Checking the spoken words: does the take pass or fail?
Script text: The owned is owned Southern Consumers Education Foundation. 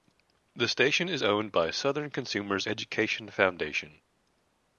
fail